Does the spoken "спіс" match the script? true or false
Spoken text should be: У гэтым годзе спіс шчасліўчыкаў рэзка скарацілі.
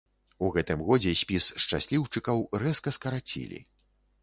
true